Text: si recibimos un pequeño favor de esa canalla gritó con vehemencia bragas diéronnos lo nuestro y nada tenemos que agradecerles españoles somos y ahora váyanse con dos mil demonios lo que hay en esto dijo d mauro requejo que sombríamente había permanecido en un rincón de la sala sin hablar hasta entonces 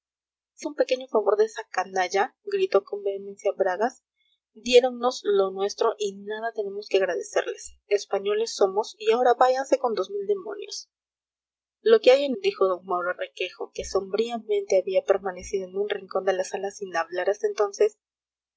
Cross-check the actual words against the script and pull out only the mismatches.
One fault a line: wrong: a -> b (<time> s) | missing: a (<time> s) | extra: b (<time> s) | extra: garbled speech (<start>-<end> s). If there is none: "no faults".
missing: recibimos (0.7 s)
missing: esto (12.4 s)